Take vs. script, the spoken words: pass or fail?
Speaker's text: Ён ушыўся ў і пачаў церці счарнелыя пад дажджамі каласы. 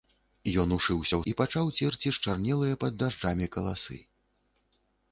pass